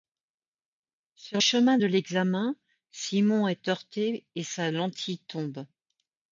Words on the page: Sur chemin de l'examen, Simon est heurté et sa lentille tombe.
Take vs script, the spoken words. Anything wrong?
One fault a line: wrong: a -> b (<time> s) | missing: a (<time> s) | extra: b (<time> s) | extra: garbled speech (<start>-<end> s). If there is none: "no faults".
no faults